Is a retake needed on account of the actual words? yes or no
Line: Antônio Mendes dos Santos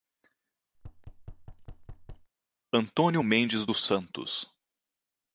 no